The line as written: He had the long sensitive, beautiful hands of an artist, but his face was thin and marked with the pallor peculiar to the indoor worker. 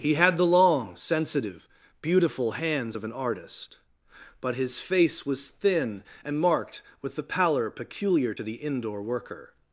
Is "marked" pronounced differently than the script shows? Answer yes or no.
no